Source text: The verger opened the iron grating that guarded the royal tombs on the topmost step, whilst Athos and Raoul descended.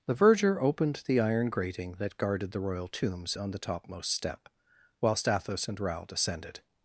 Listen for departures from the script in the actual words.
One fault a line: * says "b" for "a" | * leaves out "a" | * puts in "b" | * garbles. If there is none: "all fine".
all fine